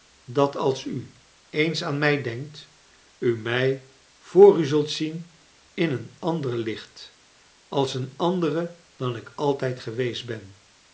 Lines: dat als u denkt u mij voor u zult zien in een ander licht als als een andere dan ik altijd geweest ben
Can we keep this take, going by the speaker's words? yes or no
no